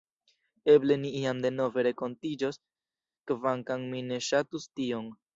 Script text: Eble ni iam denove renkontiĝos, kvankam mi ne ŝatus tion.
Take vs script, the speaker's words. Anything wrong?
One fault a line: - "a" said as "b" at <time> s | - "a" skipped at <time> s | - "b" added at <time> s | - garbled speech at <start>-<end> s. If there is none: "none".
none